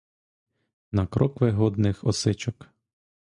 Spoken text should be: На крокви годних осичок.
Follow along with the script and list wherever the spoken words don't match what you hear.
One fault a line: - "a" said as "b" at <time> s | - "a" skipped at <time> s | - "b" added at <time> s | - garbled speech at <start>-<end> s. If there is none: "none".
none